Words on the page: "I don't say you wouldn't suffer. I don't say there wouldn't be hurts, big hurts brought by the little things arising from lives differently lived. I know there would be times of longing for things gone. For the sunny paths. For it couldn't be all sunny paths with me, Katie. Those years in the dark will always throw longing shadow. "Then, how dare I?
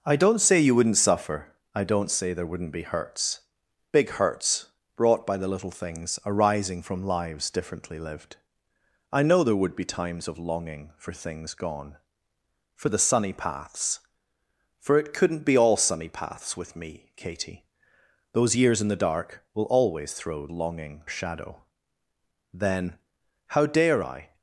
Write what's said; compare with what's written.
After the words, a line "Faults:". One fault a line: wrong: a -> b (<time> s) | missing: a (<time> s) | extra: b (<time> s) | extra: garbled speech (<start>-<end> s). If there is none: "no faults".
"I don't say you wouldn't suffer. I don't say there wouldn't be hurts, big hurts brought by the little things arising from lives differently lived. I know there would be times of longing for things gone. For the sunny paths. For it couldn't be all sunny paths with me, Katie. Those years in the dark will always throw longing shadow. "Then, how dare I?
Faults:
no faults